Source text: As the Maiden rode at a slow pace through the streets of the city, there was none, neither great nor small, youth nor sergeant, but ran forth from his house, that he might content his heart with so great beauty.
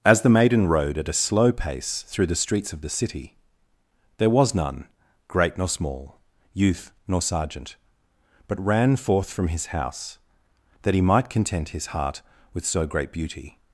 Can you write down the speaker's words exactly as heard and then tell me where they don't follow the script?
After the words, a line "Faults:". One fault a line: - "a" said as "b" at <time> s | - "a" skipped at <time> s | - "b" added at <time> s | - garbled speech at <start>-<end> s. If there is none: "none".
As the Maiden rode at a slow pace through the streets of the city, there was none, great nor small, youth nor sergeant, but ran forth from his house, that he might content his heart with so great beauty.
Faults:
- "neither" skipped at 4.9 s